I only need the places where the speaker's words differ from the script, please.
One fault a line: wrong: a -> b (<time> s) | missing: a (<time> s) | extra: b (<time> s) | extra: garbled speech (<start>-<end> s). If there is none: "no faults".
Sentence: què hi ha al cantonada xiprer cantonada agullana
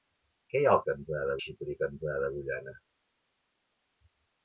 no faults